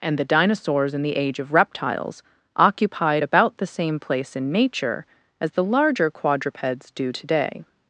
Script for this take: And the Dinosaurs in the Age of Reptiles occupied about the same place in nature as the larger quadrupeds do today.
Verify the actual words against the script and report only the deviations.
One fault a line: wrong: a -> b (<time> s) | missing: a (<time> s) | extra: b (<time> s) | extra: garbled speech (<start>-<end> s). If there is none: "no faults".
no faults